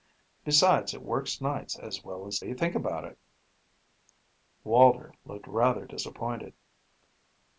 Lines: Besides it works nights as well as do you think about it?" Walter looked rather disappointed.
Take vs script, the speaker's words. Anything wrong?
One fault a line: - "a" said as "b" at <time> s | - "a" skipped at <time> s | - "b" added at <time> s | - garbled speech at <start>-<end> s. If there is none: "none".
none